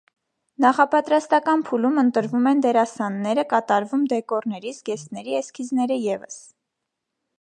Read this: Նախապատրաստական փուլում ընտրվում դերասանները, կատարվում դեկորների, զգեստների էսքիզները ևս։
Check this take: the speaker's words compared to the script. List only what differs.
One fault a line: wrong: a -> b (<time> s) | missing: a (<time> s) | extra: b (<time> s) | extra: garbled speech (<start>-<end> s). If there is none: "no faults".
extra: են (2.5 s)